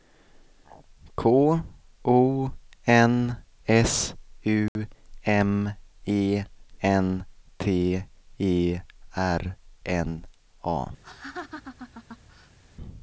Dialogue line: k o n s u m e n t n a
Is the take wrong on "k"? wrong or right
right